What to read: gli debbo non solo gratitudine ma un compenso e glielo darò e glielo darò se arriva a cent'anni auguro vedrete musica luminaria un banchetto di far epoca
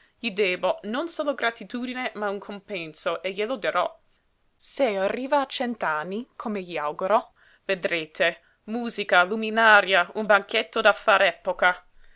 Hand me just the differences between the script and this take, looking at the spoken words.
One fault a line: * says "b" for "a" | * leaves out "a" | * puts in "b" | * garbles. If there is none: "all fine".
* leaves out "e glielo darò"
* puts in "come gli"
* says "da" for "di"